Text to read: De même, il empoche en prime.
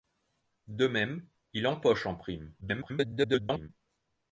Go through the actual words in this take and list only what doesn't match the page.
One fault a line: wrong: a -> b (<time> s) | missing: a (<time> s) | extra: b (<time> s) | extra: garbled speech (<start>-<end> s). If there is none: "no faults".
extra: garbled speech (2.6-3.7 s)